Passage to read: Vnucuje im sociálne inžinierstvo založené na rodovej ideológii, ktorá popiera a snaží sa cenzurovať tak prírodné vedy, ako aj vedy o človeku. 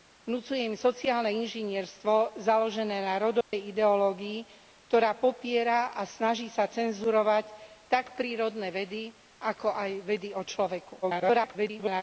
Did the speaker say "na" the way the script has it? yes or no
yes